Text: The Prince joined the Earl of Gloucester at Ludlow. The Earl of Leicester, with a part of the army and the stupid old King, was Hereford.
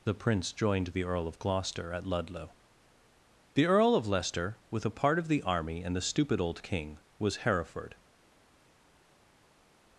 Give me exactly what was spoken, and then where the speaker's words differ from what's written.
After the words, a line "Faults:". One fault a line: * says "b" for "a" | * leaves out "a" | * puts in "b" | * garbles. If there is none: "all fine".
The Prince joined the Earl of Gloucester at Ludlow. The Earl of Leicester, with a part of the army and the stupid old King, was Hereford.
Faults:
all fine